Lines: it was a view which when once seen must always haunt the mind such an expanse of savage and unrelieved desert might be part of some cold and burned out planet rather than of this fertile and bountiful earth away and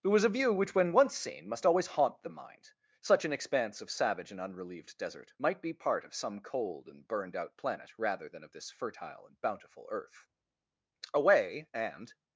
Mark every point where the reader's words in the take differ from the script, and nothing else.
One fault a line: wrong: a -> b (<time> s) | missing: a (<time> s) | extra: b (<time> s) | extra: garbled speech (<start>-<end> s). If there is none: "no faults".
no faults